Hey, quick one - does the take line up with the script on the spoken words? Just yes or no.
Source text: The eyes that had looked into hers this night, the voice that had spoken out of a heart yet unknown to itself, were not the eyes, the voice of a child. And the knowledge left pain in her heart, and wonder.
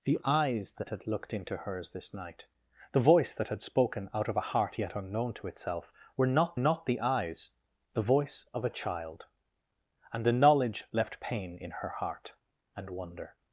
no